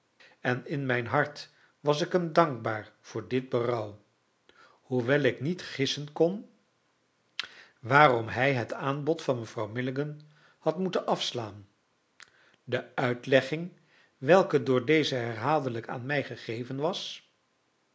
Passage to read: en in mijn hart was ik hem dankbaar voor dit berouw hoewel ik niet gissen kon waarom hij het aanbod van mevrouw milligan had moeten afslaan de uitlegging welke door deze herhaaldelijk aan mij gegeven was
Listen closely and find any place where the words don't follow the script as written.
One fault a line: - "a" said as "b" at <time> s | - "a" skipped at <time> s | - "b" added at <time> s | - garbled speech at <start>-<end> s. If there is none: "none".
none